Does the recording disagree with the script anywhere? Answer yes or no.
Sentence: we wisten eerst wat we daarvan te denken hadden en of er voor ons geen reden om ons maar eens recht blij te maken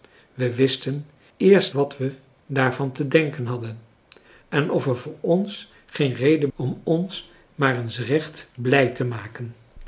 no